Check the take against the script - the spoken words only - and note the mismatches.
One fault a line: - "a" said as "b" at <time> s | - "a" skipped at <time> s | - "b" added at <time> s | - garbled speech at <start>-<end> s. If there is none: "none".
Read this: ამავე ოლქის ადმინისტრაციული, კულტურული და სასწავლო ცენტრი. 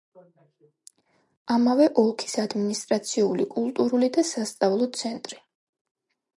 none